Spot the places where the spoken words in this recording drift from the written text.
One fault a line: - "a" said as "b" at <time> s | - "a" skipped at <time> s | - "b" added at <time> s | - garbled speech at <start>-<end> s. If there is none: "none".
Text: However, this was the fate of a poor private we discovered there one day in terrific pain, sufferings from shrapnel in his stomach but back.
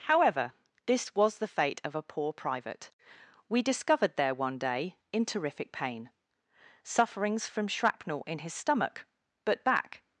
none